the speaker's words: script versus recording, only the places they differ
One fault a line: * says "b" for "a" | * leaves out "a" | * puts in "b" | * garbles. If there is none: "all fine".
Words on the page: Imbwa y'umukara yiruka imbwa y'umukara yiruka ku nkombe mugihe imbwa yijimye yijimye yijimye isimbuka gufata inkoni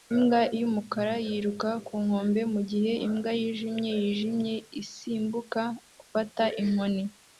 * leaves out "imbwa y'umukara yiruka"
* leaves out "yijimye"